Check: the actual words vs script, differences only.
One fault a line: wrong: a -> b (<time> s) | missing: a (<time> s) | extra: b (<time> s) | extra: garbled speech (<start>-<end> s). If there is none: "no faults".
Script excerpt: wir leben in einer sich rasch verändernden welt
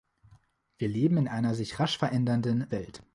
no faults